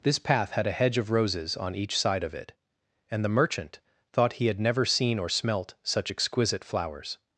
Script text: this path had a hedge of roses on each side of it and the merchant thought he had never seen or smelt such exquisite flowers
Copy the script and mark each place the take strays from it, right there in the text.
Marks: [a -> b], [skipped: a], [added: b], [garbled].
this path had a hedge of roses on each side of it and the merchant thought he had never seen or smelt such exquisite flowers